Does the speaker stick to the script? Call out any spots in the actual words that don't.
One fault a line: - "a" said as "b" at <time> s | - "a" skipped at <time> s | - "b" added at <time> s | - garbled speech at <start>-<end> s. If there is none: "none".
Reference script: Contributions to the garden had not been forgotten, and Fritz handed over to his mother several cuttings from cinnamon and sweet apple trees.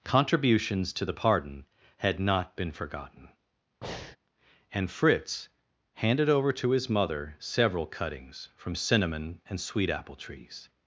- "garden" said as "pardon" at 1.1 s